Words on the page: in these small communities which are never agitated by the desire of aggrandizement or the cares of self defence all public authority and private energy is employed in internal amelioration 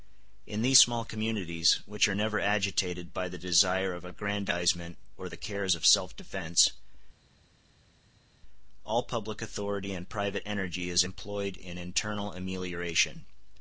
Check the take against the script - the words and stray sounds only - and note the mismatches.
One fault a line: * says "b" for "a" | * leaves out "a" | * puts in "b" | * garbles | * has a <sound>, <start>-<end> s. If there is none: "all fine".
all fine